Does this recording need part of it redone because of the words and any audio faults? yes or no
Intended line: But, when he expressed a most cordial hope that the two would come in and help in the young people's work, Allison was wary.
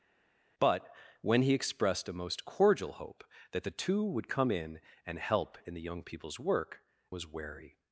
yes